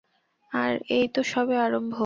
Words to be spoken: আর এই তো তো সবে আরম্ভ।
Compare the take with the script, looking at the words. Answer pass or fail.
fail